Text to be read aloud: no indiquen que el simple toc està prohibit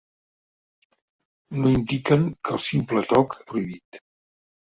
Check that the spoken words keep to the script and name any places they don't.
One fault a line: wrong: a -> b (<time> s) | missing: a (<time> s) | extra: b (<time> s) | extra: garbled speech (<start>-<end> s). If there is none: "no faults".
missing: està (3.4 s)